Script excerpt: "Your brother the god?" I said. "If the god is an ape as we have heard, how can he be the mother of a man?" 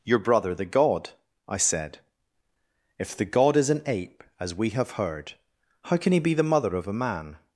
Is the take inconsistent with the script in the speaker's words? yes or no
no